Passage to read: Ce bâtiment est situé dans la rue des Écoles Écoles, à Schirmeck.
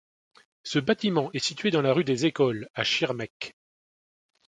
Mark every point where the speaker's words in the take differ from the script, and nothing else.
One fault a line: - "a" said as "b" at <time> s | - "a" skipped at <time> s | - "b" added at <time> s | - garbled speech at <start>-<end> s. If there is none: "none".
- "Écoles" skipped at 2.7 s